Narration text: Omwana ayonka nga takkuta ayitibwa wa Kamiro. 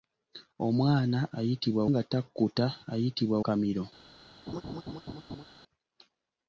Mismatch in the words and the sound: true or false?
true